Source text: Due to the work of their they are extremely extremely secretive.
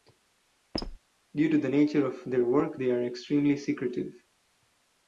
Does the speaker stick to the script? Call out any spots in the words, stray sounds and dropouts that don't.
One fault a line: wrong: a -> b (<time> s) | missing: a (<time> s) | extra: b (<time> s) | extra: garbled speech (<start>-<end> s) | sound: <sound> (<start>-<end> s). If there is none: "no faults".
sound: squeak (0.7-1.0 s)
wrong: work -> nature (1.7 s)
extra: work (2.4 s)
missing: extremely (3.6 s)